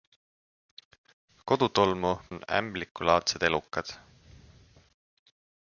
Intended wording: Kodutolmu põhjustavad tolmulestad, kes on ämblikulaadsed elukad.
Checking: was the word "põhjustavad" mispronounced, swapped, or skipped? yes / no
yes